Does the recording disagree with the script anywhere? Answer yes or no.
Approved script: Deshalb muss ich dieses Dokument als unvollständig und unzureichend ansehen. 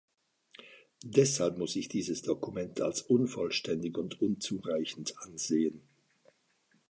no